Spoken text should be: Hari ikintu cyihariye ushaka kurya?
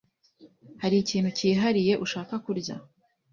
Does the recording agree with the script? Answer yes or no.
yes